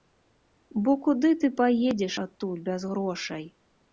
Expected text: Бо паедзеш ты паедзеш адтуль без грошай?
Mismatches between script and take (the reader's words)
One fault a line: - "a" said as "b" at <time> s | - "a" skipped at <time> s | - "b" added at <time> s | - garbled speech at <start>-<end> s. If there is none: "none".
- "паедзеш" said as "куды" at 1.1 s